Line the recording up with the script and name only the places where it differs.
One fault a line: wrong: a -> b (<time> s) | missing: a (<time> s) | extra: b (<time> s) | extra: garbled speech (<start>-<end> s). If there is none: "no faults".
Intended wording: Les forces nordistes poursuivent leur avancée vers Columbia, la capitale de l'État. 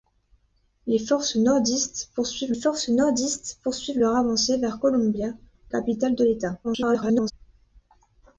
extra: forces nordistes poursuivent (2.5 s)
missing: la (5.3 s)
extra: garbled speech (6.6-7.3 s)